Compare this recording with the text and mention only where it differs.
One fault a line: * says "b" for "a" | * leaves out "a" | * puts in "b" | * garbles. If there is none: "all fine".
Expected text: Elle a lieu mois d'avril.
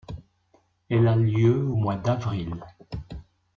* puts in "au"